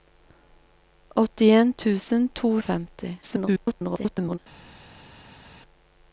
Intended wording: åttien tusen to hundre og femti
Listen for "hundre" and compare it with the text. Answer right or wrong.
wrong